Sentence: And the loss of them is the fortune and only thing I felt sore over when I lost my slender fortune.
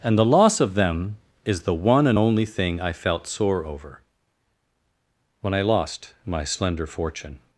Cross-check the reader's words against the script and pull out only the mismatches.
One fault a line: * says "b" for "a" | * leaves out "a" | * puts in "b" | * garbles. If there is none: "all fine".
* says "one" for "fortune"